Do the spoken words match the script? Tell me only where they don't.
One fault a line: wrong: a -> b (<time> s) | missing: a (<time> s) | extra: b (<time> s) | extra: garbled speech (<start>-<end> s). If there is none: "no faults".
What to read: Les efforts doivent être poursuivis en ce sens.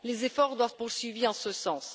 missing: être (0.7 s)